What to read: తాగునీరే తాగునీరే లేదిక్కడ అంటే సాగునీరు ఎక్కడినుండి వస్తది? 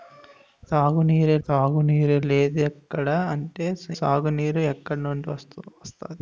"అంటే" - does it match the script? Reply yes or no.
yes